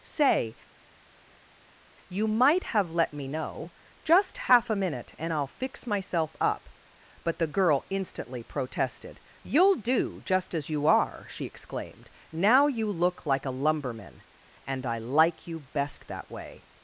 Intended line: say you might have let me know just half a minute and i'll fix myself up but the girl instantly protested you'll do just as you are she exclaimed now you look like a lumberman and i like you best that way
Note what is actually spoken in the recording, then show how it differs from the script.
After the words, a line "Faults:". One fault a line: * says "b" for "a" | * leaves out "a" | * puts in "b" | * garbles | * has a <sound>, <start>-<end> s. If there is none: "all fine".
say you might have let me know just half a minute and i'll fix myself up but the girl instantly protested you'll do just as you are she exclaimed now you look like a lumberman and i like you best that way
Faults:
all fine